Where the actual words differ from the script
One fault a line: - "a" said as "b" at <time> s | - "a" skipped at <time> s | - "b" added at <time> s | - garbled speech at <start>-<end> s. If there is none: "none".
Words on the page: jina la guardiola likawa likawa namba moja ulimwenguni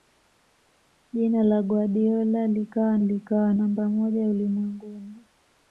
none